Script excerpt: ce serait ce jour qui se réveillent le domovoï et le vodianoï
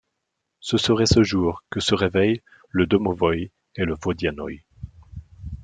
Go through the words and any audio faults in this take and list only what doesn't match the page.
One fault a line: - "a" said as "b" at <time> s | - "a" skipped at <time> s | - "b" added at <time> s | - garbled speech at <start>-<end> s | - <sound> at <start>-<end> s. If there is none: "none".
- "qui" said as "que" at 1.7 s